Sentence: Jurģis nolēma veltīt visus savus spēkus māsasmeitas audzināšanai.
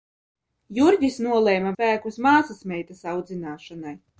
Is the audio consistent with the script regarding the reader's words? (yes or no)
no